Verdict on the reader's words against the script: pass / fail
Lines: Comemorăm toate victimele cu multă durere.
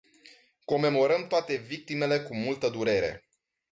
pass